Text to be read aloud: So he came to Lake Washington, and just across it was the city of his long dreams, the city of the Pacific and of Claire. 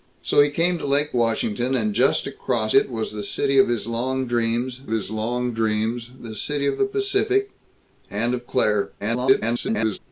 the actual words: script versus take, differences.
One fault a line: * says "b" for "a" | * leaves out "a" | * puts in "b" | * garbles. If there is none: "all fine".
* puts in "his long dreams"
* garbles